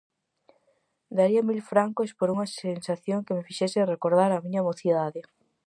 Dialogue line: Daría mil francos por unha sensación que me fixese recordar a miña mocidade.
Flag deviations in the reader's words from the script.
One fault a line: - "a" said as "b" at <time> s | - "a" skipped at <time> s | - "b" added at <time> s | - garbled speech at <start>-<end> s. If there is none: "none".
none